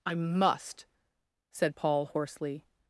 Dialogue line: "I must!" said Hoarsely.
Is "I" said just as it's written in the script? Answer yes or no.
yes